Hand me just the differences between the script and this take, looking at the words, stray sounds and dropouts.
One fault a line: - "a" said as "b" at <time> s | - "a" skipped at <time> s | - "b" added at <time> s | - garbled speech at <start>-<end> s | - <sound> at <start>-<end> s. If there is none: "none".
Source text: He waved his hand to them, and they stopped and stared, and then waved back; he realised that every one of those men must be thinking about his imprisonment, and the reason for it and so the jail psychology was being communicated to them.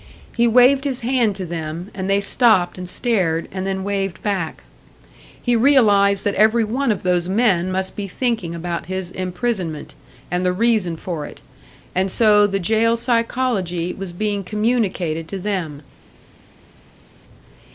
none